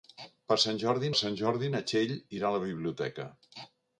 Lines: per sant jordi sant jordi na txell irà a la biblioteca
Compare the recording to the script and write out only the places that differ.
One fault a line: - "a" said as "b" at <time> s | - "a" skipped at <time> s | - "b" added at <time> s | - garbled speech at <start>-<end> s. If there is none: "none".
none